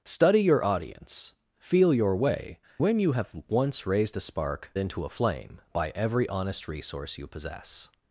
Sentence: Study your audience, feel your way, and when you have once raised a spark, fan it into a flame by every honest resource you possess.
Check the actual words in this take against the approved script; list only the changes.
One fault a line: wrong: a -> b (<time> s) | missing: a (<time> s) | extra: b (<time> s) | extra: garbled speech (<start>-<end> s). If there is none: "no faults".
missing: and (2.6 s)
missing: fan it (4.7 s)